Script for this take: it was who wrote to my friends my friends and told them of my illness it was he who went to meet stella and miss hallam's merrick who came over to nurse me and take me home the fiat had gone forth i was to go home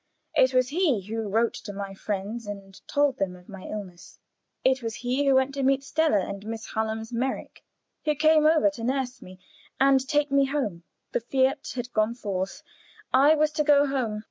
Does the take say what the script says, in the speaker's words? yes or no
no